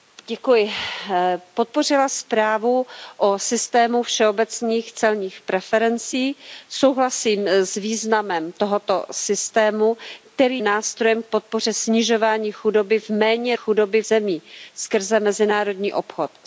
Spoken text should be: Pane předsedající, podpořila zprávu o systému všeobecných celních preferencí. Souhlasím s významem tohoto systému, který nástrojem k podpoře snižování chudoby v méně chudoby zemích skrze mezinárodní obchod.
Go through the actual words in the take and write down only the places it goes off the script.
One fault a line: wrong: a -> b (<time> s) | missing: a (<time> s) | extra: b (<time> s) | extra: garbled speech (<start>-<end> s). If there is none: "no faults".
no faults